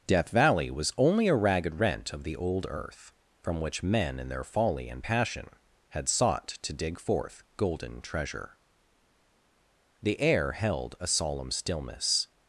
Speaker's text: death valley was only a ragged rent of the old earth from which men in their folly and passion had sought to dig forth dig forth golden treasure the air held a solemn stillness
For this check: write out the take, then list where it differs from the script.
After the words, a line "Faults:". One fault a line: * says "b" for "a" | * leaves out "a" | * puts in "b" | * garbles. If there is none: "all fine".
death valley was only a ragged rent of the old earth from which men in their folly and passion had sought to dig forth golden treasure the air held a solemn stillness
Faults:
* leaves out "dig forth"